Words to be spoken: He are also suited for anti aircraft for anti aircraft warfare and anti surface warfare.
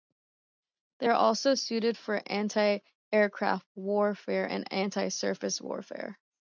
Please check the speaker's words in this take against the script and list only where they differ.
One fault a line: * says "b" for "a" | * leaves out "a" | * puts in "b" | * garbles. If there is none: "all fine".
* says "They" for "He"
* leaves out "for anti aircraft"